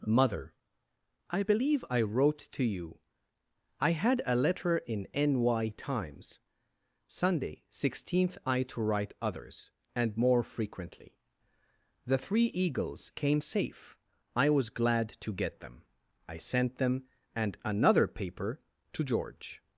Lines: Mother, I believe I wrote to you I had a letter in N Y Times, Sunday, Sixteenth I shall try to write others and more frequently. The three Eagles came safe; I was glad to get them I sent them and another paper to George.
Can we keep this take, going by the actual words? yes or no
no